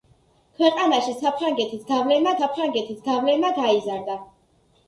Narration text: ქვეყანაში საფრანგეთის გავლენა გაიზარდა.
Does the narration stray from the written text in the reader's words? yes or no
yes